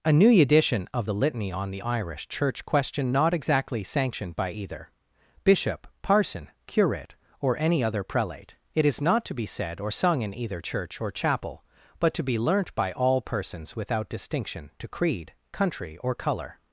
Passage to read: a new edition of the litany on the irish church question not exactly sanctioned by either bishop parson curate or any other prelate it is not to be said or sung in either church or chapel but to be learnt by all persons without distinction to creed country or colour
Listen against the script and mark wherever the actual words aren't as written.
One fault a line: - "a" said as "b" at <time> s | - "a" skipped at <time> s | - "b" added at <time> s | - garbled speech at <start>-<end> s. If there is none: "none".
none